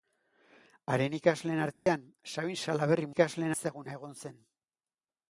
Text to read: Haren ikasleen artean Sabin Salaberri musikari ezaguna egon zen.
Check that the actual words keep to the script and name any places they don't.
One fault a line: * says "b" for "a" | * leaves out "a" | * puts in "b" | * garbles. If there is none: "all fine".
* says "ikasleen" for "musikari"